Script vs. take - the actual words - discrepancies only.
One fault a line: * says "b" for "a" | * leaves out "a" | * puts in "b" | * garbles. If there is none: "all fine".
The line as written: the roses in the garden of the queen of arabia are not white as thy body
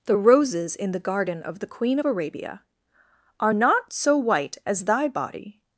* puts in "so"